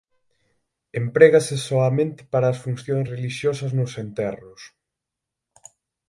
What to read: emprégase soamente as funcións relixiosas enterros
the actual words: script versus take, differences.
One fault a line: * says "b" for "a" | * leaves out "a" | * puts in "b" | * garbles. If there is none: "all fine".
* puts in "para"
* puts in "nos"